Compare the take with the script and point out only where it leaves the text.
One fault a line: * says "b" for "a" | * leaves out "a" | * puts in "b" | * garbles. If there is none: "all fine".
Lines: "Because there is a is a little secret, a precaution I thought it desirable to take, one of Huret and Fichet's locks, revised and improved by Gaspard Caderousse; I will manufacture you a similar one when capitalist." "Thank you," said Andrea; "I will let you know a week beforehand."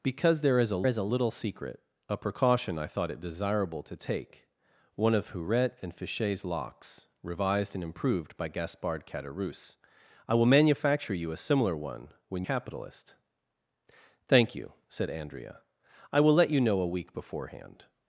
all fine